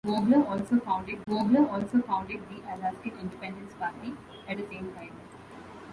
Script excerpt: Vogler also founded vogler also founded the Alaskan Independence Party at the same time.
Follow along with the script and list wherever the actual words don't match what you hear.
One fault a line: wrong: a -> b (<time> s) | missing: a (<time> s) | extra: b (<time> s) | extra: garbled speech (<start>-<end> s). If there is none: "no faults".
no faults